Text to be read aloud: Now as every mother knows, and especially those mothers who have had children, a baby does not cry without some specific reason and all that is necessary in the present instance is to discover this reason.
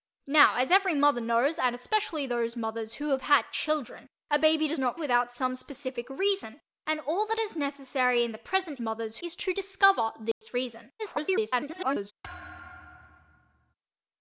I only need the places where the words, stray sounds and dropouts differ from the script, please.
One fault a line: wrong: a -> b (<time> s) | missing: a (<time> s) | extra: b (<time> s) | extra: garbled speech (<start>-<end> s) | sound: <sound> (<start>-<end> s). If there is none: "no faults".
missing: cry (5.0 s)
wrong: instance -> mothers (8.8 s)
sound: dropout (10.3-10.4 s)
extra: garbled speech (11.0-12.1 s)
sound: thud (12.2-13.7 s)